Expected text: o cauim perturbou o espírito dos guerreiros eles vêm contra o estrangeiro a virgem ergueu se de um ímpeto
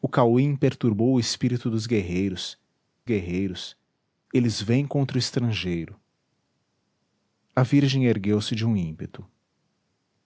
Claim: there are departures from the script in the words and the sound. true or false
true